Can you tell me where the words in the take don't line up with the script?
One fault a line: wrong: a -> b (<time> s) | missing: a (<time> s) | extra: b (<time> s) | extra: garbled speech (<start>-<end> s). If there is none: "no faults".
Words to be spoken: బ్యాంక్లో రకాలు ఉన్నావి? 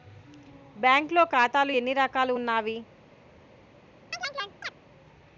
extra: ఖాతాలు ఎన్ని (1.2 s)